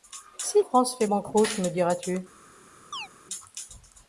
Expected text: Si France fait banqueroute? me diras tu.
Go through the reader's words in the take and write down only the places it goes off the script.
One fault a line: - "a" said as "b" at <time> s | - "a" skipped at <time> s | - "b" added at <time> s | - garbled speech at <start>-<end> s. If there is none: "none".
none